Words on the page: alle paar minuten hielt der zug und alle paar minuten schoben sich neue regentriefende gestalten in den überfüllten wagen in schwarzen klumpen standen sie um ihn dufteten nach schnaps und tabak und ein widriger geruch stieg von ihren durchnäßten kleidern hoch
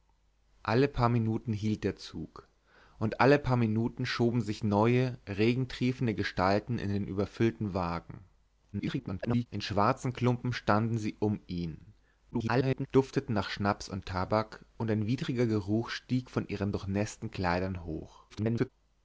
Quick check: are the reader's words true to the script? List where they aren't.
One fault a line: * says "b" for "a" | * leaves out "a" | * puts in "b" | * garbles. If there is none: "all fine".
* garbles
* garbles
* garbles